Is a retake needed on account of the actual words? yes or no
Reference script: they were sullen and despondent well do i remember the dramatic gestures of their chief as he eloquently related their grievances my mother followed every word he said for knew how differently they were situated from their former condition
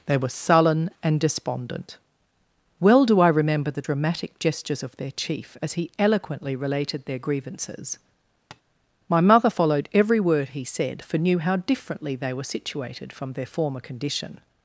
no